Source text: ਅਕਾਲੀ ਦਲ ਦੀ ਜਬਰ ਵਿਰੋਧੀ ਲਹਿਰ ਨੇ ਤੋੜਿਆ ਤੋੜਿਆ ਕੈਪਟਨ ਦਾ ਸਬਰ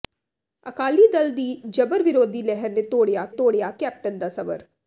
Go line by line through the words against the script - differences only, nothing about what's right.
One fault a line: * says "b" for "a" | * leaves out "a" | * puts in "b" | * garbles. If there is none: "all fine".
all fine